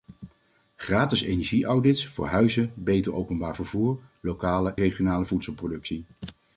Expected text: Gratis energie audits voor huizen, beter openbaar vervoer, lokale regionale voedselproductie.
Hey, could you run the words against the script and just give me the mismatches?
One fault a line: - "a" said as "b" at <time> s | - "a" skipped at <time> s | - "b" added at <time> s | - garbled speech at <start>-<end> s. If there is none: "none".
none